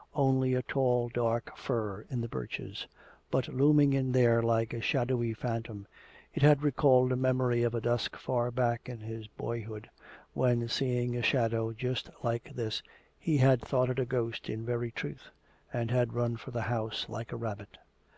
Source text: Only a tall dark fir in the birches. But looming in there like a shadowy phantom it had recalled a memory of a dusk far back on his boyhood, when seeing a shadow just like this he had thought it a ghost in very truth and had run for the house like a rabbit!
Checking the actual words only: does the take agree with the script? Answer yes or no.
no